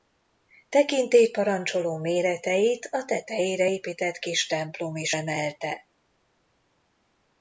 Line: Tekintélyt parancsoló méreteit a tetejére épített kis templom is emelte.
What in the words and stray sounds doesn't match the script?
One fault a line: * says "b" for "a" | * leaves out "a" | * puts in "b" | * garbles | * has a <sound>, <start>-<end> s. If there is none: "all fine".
all fine